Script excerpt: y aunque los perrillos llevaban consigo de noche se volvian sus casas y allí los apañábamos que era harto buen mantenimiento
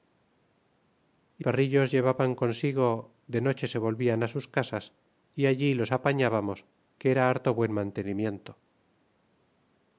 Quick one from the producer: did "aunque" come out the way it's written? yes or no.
no